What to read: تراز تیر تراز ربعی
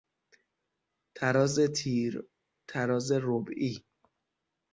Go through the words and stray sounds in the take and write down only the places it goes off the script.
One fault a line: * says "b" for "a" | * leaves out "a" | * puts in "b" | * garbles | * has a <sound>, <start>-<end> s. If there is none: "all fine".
all fine